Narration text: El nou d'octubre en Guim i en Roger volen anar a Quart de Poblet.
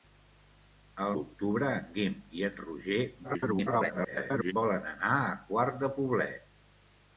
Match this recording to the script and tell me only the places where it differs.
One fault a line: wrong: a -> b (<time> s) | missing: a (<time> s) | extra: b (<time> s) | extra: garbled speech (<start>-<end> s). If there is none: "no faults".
missing: nou (1.1 s)
extra: garbled speech (3.2-4.5 s)